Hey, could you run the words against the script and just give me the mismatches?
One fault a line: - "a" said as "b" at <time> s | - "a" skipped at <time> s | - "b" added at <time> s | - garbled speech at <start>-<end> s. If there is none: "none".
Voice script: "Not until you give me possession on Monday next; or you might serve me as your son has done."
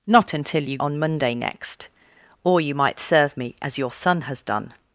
- "give me possession" skipped at 0.8 s